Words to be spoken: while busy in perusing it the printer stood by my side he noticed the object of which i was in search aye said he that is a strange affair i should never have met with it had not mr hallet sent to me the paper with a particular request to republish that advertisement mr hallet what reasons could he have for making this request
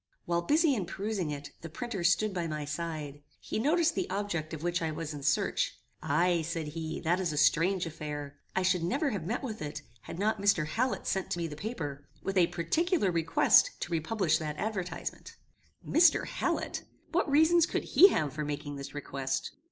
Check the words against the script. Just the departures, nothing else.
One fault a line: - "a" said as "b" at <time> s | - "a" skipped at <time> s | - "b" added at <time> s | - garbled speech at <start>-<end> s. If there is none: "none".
none